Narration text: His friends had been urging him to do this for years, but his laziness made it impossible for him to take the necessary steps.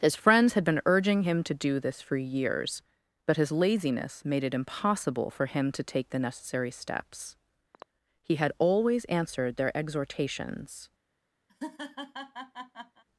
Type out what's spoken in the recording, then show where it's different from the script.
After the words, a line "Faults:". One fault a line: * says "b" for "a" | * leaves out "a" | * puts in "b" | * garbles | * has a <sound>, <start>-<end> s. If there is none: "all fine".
His friends had been urging him to do this for years, but his laziness made it impossible for him to take the necessary steps. He had always answered their exhortations
Faults:
* has a throat clearing, 7.7-7.9 s
* puts in "He had always answered their exhortations"
* has a laugh, 11.5-13.0 s